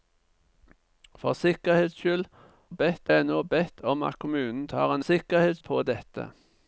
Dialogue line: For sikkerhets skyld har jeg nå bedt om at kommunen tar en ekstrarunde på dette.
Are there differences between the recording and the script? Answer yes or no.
yes